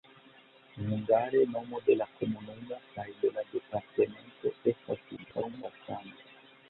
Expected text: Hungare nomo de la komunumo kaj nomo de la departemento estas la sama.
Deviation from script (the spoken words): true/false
true